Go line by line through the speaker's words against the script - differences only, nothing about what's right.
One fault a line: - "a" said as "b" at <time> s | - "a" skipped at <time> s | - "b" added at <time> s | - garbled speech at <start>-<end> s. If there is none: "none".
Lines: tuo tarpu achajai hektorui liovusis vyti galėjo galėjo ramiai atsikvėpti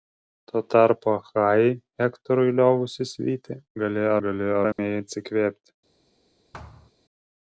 none